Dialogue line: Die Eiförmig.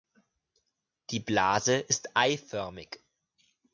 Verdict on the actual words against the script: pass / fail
fail